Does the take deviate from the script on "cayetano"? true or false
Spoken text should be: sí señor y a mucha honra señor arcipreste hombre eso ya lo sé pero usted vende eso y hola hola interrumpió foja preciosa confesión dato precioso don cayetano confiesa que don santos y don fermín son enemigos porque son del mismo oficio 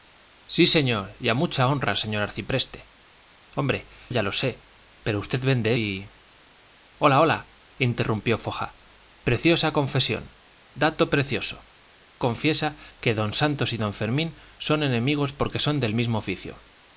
true